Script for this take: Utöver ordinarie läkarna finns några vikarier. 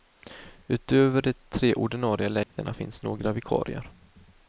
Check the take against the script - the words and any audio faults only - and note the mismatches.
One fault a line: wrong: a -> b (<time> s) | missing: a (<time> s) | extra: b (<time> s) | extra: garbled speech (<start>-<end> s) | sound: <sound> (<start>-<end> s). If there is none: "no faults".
extra: de tre (1.2 s)
sound: dropout (2.4-2.6 s)